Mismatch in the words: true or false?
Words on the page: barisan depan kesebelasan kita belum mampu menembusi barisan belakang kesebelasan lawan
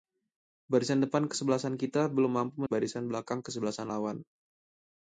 true